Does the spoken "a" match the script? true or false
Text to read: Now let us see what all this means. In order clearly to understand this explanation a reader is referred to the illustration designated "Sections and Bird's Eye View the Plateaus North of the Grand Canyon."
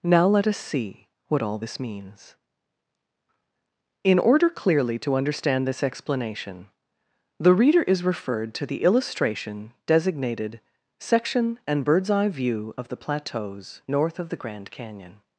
false